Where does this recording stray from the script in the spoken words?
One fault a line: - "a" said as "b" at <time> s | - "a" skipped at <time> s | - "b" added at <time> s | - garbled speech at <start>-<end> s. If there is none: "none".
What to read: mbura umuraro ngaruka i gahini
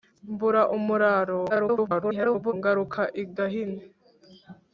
- garbled speech at 1.5-2.5 s